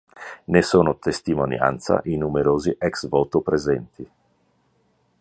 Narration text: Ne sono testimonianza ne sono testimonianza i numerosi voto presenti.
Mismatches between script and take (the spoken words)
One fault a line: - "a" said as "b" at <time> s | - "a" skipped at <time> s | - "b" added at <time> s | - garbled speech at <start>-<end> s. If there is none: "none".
- "ne sono testimonianza" skipped at 2.0 s
- "ex" added at 2.8 s